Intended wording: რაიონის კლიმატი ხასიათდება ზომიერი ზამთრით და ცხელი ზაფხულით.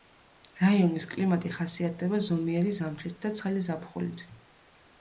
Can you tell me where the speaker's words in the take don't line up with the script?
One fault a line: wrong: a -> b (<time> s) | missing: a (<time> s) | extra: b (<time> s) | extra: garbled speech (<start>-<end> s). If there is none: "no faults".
no faults